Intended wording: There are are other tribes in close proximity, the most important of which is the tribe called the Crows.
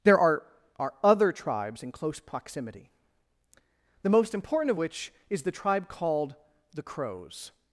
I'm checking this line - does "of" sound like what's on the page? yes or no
yes